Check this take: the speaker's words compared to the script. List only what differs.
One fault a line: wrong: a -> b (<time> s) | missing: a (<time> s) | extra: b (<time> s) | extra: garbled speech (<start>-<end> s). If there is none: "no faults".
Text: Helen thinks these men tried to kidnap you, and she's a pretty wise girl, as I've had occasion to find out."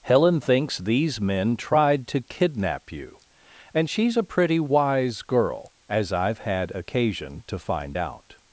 no faults